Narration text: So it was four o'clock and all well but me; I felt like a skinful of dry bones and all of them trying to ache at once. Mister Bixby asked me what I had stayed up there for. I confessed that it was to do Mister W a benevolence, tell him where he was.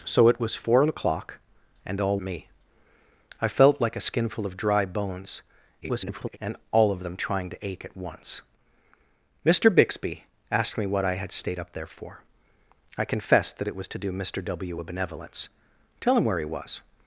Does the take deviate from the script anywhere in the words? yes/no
yes